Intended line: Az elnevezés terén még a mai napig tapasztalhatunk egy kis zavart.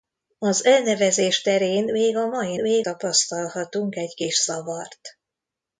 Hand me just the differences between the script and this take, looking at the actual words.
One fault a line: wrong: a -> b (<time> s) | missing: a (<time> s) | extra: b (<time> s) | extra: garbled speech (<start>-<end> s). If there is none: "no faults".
wrong: napig -> még (2.5 s)